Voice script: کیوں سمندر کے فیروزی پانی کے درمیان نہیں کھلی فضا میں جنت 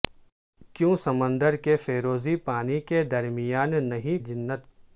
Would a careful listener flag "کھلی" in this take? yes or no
yes